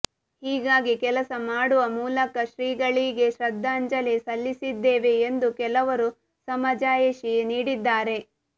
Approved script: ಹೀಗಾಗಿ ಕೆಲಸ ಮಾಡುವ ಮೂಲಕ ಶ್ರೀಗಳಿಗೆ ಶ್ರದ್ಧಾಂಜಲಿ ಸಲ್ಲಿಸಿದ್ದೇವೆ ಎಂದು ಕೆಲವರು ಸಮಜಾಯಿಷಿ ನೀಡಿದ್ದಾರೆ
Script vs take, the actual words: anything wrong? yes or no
no